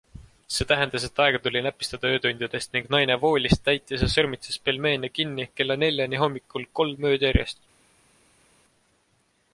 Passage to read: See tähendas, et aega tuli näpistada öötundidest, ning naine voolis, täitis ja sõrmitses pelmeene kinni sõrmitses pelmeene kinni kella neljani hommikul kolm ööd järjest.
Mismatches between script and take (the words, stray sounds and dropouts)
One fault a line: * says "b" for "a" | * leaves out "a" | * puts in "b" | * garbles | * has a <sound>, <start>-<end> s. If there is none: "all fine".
* leaves out "sõrmitses pelmeene kinni"